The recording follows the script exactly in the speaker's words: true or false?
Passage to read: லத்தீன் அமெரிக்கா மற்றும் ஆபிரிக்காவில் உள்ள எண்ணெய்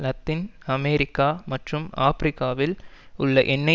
true